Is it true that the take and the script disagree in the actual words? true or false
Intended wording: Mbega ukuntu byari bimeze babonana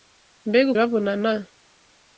true